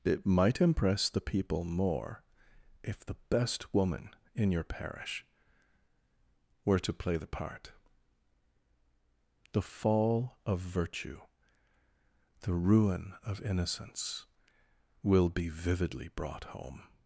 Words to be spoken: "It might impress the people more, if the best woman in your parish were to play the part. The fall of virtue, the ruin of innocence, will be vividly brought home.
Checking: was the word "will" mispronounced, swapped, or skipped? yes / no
no